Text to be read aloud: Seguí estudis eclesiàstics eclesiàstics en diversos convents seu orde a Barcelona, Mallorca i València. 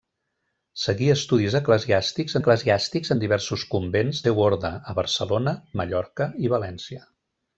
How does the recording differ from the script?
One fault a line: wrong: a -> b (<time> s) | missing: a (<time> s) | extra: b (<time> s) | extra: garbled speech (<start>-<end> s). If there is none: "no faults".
no faults